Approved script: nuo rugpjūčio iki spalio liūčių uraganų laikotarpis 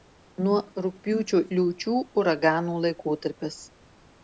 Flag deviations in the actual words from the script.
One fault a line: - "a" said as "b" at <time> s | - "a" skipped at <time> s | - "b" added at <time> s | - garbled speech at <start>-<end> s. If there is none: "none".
- "iki spalio" skipped at 1.4 s